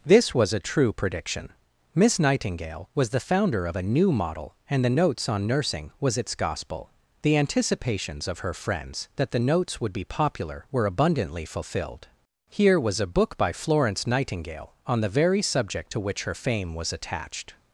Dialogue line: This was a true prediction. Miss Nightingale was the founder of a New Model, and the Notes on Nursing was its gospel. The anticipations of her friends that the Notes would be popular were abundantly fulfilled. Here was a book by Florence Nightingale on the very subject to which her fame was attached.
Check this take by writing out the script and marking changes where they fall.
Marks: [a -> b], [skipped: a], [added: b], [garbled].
This was a true prediction. Miss Nightingale was the founder of a New Model, and the Notes on Nursing was its gospel. The anticipations of her friends that the Notes would be popular were abundantly fulfilled. Here was a book by Florence Nightingale on the very subject to which her fame was attached.